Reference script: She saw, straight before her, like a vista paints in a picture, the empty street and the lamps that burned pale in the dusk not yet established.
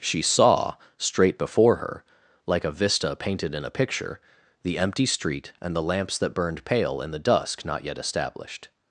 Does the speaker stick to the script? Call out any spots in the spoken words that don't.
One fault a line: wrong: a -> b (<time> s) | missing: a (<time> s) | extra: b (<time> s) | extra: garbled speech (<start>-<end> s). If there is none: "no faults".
wrong: paints -> painted (3.1 s)